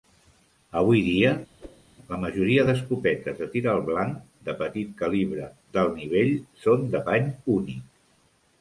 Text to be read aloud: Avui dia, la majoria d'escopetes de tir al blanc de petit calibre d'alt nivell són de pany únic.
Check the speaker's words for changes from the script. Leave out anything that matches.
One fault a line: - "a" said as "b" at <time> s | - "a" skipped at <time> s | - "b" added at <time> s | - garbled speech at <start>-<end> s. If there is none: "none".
none